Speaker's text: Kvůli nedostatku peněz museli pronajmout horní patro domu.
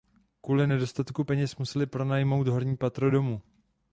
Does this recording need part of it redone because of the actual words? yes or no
no